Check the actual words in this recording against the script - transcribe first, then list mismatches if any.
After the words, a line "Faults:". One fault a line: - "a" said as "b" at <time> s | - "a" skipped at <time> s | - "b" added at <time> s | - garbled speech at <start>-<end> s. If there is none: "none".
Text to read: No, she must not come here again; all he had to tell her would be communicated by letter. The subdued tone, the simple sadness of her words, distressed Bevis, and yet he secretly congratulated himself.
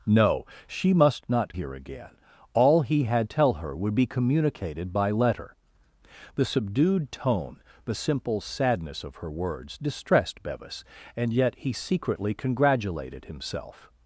No, she must not here again; all he had tell her would be communicated by letter. The subdued tone, the simple sadness of her words, distressed Bevis, and yet he secretly congratulated himself.
Faults:
- "come" skipped at 1.6 s
- "to" skipped at 3.3 s